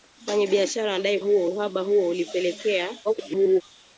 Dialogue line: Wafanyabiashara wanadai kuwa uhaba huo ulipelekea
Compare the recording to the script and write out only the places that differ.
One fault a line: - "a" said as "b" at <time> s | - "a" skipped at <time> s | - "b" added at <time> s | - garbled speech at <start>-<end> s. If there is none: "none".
- "kuwa" said as "huo" at 1.2 s
- garbled speech at 3.0-3.6 s